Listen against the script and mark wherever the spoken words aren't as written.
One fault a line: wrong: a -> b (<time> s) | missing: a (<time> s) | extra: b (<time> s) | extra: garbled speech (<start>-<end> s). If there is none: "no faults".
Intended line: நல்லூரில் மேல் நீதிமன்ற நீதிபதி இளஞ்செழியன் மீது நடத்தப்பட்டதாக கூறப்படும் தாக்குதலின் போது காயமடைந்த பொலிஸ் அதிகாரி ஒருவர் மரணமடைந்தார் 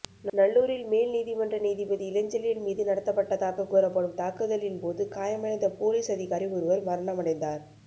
no faults